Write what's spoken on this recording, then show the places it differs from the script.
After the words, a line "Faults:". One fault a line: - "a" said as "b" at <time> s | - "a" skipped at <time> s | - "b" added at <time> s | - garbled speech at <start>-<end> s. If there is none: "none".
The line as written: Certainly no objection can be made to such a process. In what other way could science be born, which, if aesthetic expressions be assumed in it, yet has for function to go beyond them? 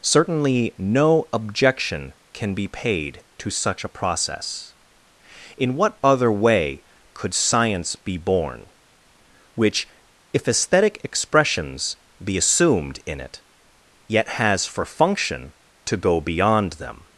Certainly no objection can be paid to such a process. In what other way could science be born, which, if aesthetic expressions be assumed in it, yet has for function to go beyond them?
Faults:
- "made" said as "paid" at 2.7 s